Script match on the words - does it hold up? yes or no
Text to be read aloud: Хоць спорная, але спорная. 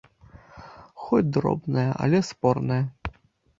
no